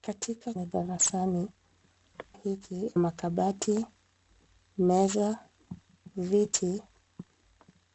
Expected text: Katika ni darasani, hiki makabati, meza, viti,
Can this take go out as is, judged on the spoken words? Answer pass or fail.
pass